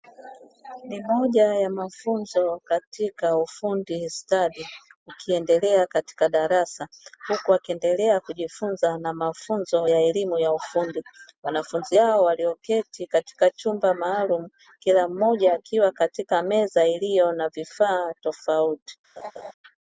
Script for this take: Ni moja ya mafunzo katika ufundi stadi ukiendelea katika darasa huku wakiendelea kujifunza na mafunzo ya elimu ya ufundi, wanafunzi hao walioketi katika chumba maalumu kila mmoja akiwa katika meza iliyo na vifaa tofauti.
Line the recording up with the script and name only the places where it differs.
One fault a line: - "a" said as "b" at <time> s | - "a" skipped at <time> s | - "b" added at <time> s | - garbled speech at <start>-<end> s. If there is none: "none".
none